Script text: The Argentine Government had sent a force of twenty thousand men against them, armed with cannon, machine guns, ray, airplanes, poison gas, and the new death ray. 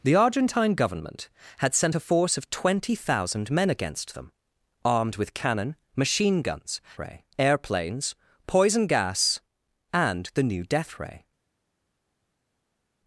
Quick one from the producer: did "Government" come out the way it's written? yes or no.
yes